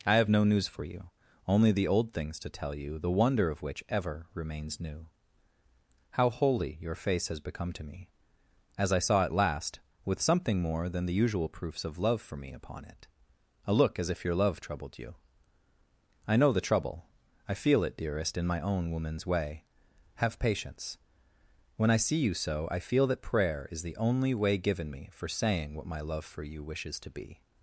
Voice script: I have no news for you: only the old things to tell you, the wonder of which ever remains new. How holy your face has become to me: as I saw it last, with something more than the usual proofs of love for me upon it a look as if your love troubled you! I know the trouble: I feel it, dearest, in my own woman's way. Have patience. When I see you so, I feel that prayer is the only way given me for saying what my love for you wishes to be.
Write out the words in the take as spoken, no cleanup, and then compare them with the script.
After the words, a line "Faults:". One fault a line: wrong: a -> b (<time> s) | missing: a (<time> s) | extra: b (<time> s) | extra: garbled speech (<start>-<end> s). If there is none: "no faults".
I have no news for you: only the old things to tell you, the wonder of which ever remains new. How holy your face has become to me: as I saw it last, with something more than the usual proofs of love for me upon it a look as if your love troubled you! I know the trouble: I feel it, dearest, in my own woman's way. Have patience. When I see you so, I feel that prayer is the only way given me for saying what my love for you wishes to be.
Faults:
no faults